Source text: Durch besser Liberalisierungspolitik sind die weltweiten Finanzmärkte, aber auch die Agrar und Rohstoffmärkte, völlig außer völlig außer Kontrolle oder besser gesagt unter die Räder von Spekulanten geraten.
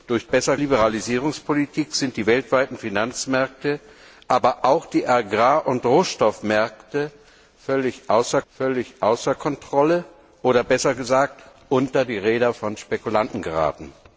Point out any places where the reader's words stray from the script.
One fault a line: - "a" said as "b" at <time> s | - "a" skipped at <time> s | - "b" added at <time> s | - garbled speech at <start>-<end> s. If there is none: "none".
none